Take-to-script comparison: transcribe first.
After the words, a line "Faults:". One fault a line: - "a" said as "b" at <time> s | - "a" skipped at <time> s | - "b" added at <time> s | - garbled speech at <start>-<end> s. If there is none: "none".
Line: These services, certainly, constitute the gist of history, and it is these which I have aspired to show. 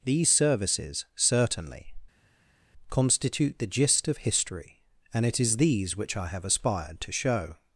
These services, certainly, constitute the gist of history, and it is these which I have aspired to show.
Faults:
none